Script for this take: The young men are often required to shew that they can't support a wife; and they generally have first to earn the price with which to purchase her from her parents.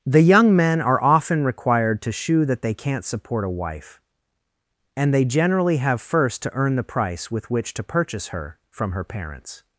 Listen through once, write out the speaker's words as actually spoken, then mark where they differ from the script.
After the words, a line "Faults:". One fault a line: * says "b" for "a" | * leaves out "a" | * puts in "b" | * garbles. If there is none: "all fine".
The young men are often required to shew that they can't support a wife; and they generally have first to earn the price with which to purchase her from her parents.
Faults:
all fine